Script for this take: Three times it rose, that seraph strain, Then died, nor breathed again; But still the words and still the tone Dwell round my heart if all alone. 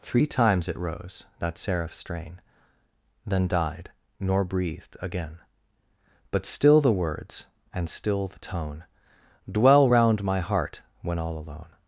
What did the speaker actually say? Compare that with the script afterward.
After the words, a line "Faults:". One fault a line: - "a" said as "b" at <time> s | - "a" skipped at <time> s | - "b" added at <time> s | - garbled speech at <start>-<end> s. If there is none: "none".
Three times it rose, that seraph strain, Then died, nor breathed again; But still the words and still the tone Dwell round my heart when all alone.
Faults:
- "if" said as "when" at 11.0 s